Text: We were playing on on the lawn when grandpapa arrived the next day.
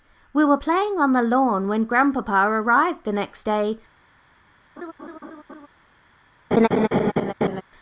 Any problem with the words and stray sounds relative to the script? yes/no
yes